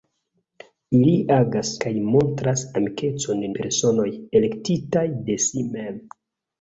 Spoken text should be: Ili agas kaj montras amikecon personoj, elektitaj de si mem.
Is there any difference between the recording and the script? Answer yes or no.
no